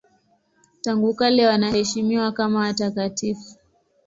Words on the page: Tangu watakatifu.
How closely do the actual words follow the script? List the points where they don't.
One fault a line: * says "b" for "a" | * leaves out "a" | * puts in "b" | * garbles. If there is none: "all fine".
* puts in "kale wanaheshimiwa kama"